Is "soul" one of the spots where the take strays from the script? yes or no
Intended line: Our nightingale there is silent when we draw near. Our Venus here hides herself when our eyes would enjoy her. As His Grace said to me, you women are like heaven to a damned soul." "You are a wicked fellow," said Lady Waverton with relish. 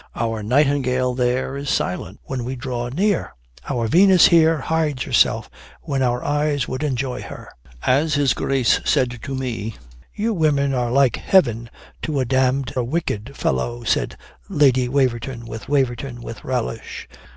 yes